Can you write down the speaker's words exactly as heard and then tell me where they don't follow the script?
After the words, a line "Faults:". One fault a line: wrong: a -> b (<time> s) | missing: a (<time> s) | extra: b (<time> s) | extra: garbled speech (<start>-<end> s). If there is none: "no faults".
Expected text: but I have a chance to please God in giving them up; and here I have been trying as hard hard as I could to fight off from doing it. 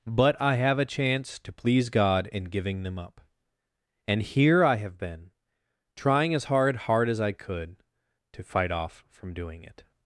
but I have a chance to please God in giving them up; and here I have been trying as hard hard as I could to fight off from doing it.
Faults:
no faults